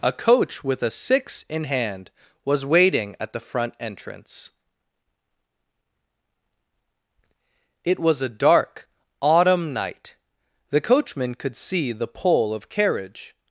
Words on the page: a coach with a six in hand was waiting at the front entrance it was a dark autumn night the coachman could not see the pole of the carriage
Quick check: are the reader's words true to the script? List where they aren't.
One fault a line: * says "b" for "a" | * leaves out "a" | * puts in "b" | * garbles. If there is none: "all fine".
* leaves out "not"
* leaves out "the"